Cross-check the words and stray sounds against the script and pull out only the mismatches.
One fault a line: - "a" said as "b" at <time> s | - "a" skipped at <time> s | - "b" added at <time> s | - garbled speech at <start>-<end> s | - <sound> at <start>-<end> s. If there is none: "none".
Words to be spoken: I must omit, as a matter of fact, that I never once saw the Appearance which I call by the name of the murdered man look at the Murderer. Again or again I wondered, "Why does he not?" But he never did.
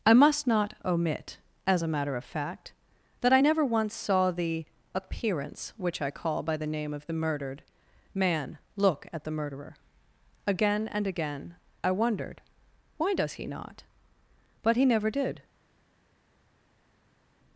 - "not" added at 0.5 s
- "or" said as "and" at 10.9 s